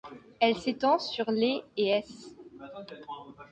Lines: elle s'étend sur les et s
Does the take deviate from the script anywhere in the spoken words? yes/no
no